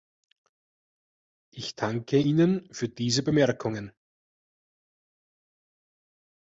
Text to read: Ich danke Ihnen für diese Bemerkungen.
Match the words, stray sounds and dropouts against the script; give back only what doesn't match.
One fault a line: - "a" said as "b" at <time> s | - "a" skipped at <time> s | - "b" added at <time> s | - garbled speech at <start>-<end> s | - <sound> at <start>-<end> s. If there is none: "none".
none